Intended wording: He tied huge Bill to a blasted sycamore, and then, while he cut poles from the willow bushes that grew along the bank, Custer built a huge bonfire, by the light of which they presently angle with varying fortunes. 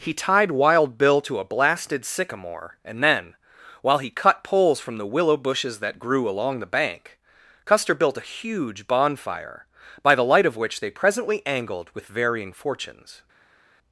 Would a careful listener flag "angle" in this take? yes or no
yes